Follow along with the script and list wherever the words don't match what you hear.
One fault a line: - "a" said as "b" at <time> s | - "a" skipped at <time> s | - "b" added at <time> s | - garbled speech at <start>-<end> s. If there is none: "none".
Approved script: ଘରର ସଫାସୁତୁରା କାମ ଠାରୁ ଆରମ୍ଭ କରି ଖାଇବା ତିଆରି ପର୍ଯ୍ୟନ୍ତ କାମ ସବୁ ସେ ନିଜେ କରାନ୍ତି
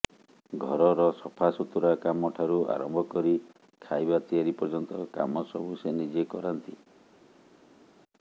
none